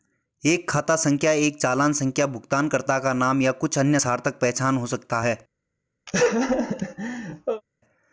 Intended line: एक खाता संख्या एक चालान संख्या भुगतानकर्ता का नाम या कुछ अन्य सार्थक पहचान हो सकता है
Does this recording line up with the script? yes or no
yes